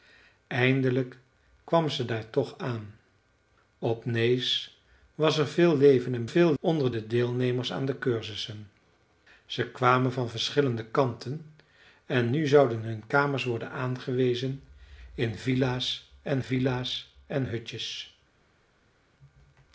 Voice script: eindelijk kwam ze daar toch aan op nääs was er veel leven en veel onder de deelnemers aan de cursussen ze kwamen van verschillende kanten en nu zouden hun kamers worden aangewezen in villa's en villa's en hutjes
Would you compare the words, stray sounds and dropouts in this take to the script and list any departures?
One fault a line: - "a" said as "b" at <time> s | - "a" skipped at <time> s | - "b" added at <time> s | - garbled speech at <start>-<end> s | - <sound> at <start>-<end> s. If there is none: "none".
none